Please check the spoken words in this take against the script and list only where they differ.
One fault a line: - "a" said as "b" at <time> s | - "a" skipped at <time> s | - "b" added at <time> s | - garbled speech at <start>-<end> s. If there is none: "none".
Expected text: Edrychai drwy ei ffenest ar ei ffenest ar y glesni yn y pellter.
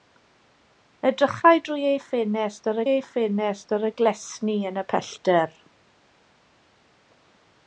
none